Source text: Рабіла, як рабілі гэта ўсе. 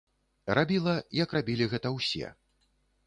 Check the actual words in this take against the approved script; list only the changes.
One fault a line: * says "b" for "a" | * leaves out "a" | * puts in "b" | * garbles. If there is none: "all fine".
all fine